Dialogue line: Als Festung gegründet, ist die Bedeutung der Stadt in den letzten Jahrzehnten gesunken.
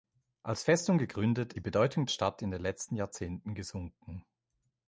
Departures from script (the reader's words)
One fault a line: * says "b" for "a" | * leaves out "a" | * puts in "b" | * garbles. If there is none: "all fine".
* leaves out "ist"
* leaves out "der"